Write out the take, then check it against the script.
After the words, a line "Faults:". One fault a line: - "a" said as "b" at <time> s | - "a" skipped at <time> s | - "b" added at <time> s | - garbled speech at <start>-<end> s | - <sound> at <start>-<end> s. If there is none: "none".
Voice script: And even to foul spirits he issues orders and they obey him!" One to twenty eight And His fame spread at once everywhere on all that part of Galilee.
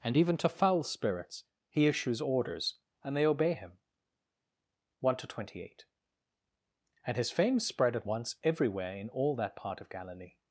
And even to foul spirits he issues orders and they obey him!" One to twenty eight And His fame spread at once everywhere in all that part of Galilee.
Faults:
- "on" said as "in" at 9.0 s